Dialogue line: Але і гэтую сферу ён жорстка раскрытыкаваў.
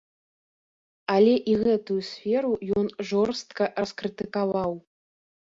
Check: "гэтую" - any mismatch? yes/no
no